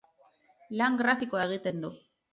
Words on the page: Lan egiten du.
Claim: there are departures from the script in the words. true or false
true